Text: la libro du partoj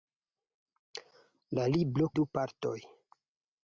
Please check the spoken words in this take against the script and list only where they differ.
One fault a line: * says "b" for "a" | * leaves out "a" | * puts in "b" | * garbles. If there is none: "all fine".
all fine